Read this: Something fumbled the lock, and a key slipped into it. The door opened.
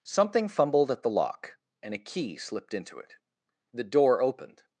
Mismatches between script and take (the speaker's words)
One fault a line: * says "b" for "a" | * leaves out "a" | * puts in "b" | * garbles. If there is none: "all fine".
* puts in "at"